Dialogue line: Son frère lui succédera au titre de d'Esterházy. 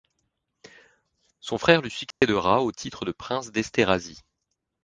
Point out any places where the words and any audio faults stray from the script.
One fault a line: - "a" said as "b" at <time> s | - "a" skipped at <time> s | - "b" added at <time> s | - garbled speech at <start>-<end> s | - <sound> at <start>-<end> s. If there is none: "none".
- dropout at 2.1-2.2 s
- "prince" added at 3.1 s